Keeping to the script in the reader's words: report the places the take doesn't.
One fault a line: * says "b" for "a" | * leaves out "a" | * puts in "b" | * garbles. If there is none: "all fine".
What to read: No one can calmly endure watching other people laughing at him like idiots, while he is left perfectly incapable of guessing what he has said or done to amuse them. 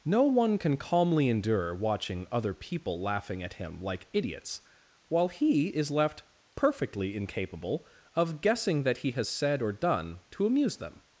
* says "that" for "what"